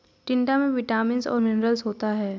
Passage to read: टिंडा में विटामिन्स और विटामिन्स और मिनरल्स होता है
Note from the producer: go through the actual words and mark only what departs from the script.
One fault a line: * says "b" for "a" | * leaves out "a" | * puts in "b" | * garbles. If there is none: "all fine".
* leaves out "विटामिन्स और"